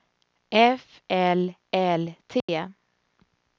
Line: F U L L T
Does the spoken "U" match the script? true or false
false